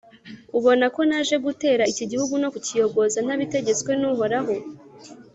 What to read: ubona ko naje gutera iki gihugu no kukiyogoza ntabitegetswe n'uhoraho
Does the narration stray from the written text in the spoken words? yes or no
no